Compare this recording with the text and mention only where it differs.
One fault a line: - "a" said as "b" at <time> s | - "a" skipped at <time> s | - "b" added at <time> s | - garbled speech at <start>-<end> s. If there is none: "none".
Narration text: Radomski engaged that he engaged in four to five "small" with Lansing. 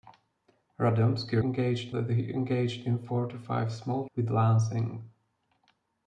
none